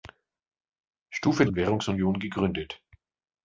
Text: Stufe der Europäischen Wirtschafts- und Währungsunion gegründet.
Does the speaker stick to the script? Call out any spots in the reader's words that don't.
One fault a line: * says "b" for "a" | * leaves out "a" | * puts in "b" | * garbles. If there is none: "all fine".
* leaves out "der Europäischen Wirtschafts"